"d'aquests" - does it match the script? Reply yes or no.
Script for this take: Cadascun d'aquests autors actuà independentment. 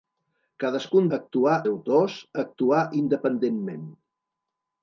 no